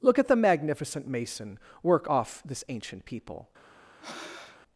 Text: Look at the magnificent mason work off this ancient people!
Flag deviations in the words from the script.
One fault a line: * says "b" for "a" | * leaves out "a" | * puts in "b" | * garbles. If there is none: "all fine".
all fine